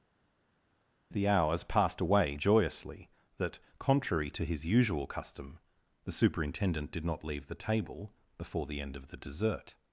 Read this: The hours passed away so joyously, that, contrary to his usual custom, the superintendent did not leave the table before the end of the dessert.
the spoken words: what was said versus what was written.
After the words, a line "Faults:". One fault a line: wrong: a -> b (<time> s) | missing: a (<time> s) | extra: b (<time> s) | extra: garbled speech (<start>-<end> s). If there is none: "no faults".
The hours passed away joyously, that, contrary to his usual custom, the superintendent did not leave the table before the end of the dessert.
Faults:
missing: so (2.4 s)